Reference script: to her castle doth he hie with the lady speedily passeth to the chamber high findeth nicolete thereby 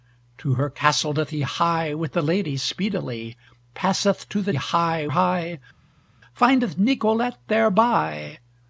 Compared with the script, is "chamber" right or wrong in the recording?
wrong